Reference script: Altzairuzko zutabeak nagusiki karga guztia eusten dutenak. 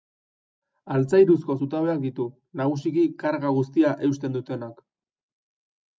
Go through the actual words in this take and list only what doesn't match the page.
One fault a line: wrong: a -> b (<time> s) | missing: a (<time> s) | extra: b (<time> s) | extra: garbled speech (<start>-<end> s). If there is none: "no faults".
extra: ditu (2.1 s)